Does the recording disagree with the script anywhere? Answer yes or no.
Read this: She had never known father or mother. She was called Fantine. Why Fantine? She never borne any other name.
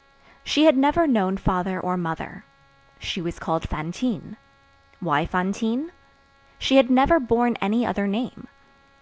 yes